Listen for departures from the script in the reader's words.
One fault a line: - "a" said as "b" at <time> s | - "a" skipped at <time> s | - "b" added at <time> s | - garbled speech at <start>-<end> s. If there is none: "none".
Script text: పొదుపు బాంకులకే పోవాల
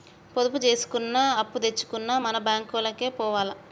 - "జేసుకున్నా అప్పుదెచ్చుకున్నా మన" added at 0.6 s